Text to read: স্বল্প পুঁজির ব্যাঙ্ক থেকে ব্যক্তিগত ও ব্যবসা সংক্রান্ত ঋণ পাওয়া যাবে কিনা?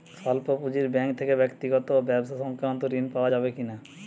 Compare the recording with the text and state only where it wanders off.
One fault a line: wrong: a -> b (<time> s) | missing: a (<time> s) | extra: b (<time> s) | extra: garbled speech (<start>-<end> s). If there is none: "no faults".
no faults